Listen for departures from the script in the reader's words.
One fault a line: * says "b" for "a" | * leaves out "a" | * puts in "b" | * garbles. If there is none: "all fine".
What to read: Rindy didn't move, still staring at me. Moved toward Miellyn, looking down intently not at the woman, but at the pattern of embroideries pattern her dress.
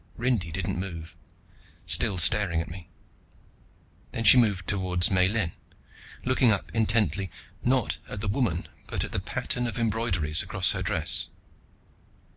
* puts in "Then she"
* says "up" for "down"
* says "across" for "pattern"